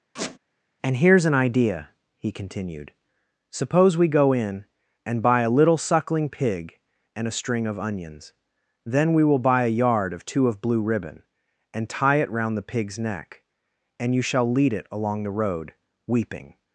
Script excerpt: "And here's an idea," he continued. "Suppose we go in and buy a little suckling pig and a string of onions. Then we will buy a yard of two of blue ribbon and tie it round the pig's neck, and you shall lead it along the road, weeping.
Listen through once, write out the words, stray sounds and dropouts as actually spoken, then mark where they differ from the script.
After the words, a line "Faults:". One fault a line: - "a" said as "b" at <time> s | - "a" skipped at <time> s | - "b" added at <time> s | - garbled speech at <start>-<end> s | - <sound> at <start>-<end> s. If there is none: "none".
"And here's an idea," he continued. "Suppose we go in and buy a little suckling pig and a string of onions. Then we will buy a yard of two of blue ribbon and tie it round the pig's neck, and you shall lead it along the road, weeping.
Faults:
- squeak at 0.2-0.4 s